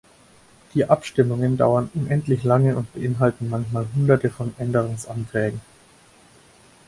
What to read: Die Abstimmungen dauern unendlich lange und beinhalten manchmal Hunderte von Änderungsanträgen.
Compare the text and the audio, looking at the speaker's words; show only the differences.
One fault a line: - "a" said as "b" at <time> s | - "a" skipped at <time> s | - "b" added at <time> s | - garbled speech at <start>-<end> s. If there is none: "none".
none